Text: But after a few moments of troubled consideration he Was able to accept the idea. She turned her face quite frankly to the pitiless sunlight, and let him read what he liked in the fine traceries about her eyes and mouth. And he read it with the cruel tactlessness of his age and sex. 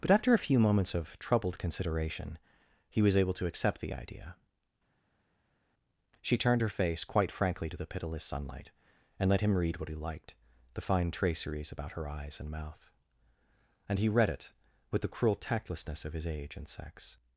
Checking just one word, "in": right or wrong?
wrong